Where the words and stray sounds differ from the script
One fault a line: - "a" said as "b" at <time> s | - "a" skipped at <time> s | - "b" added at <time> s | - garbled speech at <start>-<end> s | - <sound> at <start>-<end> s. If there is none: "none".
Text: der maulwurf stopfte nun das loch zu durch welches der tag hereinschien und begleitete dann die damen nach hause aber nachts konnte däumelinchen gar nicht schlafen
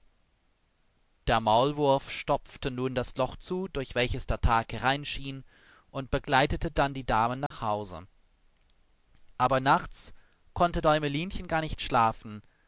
- dropout at 7.5-7.5 s